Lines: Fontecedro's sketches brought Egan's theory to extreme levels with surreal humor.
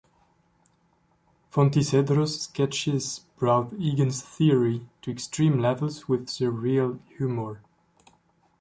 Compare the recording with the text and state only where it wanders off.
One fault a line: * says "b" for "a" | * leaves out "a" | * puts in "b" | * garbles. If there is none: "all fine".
all fine